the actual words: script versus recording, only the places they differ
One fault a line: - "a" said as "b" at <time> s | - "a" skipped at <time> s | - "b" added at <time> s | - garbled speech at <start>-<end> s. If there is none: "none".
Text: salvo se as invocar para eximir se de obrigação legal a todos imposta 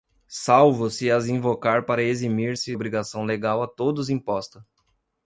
- "de" skipped at 2.8 s